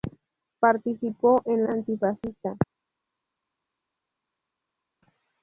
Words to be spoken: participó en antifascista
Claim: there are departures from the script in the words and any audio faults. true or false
false